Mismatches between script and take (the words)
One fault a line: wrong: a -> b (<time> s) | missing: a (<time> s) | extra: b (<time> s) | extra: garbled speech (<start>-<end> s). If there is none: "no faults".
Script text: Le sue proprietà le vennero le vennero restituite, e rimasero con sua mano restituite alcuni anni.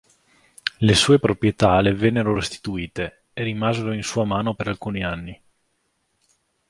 missing: le vennero (2.3 s)
wrong: con -> in (3.9 s)
wrong: restituite -> per (4.5 s)